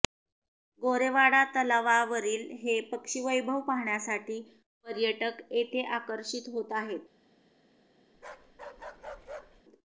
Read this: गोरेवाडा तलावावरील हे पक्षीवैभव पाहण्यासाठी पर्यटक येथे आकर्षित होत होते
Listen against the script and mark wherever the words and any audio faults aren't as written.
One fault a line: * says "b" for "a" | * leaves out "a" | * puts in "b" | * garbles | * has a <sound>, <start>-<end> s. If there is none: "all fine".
* says "आहेत" for "होते"
* has a bark, 8.1-9.6 s